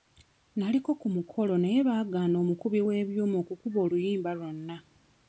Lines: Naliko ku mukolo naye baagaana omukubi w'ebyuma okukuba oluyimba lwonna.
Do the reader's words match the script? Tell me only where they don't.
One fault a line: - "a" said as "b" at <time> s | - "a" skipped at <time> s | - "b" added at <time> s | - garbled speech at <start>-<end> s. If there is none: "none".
none